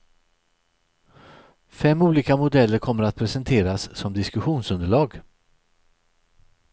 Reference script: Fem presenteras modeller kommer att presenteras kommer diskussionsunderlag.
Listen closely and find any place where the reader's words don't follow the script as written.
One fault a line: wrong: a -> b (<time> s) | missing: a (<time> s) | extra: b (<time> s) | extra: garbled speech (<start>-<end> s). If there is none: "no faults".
wrong: presenteras -> olika (2.0 s)
wrong: kommer -> som (4.0 s)